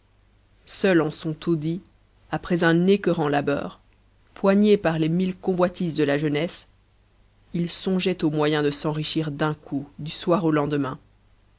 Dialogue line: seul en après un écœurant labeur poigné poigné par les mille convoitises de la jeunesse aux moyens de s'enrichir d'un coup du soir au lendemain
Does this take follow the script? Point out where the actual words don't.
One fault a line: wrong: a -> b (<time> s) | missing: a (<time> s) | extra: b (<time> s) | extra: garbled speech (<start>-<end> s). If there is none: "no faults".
extra: son taudis (1.1 s)
missing: poigné (4.8 s)
extra: il songeait (7.5 s)